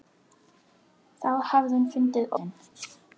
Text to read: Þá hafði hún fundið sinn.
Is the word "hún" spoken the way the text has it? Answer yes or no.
yes